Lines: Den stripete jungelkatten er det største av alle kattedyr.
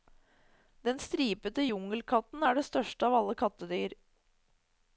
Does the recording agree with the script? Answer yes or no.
yes